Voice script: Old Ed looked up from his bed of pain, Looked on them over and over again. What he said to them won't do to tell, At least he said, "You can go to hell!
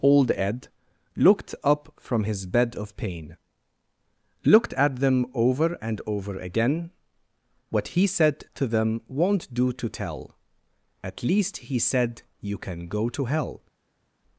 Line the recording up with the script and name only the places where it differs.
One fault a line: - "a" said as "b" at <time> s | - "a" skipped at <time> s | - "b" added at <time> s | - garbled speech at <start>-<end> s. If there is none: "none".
- "on" said as "at" at 4.7 s